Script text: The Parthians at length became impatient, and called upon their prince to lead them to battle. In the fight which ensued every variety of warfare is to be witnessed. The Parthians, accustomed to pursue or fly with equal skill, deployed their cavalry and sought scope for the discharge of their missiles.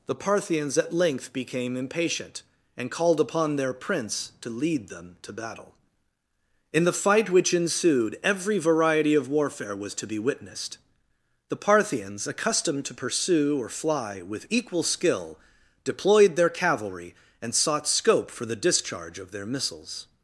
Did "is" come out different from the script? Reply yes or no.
yes